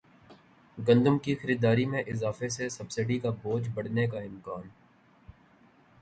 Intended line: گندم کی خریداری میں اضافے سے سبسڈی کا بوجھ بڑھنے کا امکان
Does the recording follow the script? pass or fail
pass